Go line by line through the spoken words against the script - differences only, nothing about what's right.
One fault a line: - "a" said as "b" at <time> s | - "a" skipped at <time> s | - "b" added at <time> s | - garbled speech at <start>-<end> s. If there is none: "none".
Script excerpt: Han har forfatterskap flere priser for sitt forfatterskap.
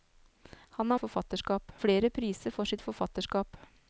none